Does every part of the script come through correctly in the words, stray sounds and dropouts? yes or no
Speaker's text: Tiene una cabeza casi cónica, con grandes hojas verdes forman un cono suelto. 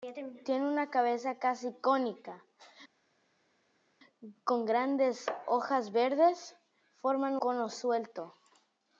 no